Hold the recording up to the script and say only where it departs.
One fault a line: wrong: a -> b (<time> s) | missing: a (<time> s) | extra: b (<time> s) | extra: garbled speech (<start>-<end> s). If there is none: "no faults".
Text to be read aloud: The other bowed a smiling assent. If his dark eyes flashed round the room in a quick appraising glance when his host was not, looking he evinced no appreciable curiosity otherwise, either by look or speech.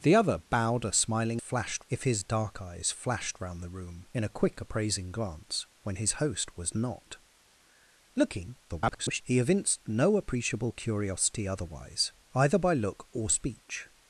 wrong: assent -> flashed (1.4 s)
extra: garbled speech (8.7-9.2 s)